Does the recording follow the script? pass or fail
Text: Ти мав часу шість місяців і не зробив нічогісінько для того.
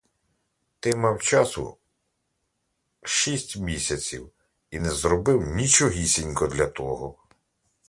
pass